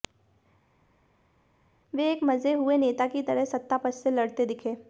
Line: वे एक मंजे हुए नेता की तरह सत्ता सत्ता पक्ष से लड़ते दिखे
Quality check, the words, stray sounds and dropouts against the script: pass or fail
fail